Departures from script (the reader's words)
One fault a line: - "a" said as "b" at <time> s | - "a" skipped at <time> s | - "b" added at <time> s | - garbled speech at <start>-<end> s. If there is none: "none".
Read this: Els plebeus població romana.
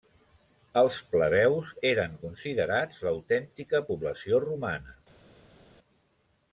- "eren considerats l'autèntica" added at 1.9 s